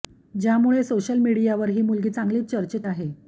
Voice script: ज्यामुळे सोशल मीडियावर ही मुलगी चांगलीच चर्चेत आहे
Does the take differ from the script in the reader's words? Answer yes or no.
no